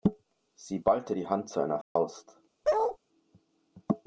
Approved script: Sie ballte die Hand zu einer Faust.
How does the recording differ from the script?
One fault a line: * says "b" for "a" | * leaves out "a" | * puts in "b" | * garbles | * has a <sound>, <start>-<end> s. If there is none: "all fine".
* has a dropout, 1.8-2.0 s
* has a bark, 2.6-3.0 s